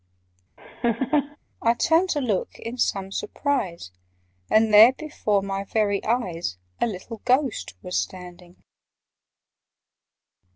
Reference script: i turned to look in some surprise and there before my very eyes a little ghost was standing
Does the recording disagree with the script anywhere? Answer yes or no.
no